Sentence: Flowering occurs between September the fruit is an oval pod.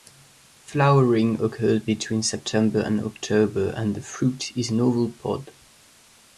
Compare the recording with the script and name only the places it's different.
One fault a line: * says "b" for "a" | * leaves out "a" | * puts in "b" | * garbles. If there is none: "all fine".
* puts in "and October and"